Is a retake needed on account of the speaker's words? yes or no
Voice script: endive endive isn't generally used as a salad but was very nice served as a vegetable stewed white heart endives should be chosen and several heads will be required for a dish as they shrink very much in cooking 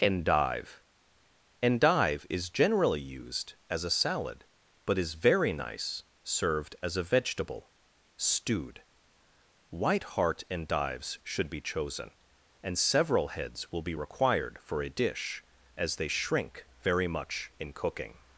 yes